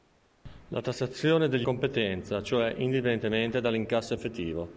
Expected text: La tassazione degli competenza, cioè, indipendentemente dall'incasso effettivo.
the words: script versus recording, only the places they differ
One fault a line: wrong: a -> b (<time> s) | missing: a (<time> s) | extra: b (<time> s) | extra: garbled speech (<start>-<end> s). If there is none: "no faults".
no faults